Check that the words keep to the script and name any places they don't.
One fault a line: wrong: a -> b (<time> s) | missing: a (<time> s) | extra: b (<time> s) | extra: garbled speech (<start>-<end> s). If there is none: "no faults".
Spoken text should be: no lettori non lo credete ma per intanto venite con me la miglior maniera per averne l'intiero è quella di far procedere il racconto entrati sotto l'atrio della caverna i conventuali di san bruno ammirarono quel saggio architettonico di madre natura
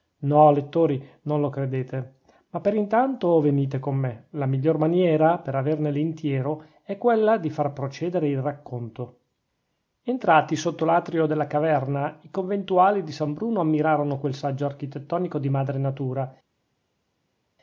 no faults